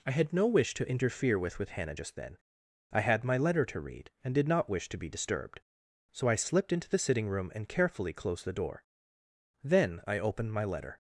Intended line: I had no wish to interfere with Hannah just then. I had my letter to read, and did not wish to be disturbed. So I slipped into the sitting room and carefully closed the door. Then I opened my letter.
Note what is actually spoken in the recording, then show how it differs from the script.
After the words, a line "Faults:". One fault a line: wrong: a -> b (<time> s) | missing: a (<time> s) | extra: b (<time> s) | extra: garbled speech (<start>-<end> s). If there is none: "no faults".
I had no wish to interfere with with Hannah just then. I had my letter to read, and did not wish to be disturbed. So I slipped into the sitting room and carefully closed the door. Then I opened my letter.
Faults:
extra: with (1.6 s)